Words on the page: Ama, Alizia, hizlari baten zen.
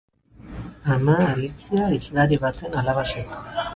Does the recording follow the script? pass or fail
fail